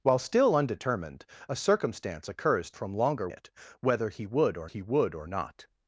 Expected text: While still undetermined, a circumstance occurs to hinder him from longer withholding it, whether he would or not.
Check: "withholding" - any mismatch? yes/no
yes